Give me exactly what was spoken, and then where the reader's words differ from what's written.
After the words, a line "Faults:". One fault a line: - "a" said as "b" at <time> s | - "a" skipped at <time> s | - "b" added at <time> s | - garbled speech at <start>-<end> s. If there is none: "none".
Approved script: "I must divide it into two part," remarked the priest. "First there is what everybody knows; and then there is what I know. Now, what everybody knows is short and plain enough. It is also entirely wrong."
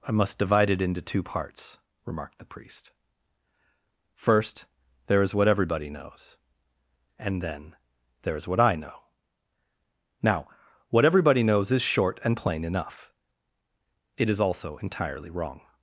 "I must divide it into two parts," remarked the priest. "First there is what everybody knows; and then there is what I know. Now, what everybody knows is short and plain enough. It is also entirely wrong."
Faults:
- "part" said as "parts" at 1.2 s